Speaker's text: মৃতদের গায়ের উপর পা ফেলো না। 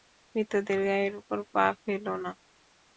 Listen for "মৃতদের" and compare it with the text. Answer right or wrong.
right